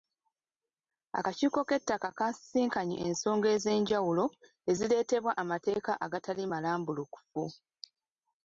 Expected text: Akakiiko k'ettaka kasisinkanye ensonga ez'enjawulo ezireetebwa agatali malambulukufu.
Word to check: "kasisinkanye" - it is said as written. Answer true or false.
true